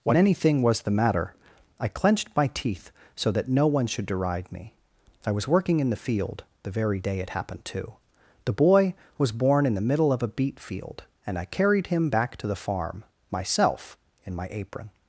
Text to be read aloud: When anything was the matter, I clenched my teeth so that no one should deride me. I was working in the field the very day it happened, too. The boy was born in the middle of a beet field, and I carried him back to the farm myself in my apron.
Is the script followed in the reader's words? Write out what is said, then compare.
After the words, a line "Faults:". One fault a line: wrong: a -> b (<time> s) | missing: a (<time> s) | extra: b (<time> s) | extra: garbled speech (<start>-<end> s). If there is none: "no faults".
When anything was the matter, I clenched my teeth so that no one should deride me. I was working in the field the very day it happened, too. The boy was born in the middle of a beet field, and I carried him back to the farm myself in my apron.
Faults:
no faults